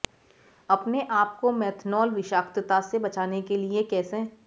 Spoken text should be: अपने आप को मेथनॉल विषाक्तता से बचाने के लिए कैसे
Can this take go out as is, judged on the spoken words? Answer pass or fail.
pass